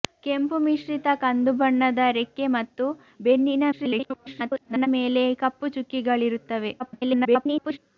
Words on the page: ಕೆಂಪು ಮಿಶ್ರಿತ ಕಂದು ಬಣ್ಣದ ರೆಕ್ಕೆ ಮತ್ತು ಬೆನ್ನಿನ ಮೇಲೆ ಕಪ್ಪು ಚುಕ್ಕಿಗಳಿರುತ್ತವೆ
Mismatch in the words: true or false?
true